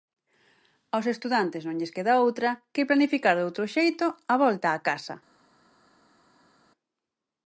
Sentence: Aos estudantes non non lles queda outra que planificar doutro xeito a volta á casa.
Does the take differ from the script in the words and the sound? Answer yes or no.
yes